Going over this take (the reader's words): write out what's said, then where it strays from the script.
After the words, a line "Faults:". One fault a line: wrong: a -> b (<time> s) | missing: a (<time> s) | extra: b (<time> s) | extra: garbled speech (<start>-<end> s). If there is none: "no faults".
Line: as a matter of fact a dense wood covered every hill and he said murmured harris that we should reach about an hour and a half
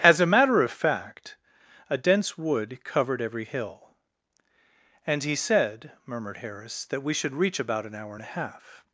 as a matter of fact a dense wood covered every hill and he said murmured harris that we should reach about an hour and a half
Faults:
no faults